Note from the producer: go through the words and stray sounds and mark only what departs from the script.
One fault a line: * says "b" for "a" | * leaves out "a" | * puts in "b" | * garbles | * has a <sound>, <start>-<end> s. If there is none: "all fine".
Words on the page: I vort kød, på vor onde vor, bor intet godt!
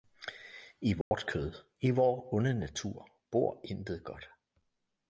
* has a dropout, 1.0-1.1 s
* says "i" for "på"
* says "natur" for "vor"